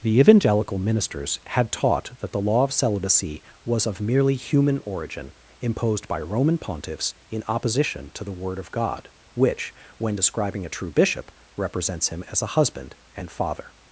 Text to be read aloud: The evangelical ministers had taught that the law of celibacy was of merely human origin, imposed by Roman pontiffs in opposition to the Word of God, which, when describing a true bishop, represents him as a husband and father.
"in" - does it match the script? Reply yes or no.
yes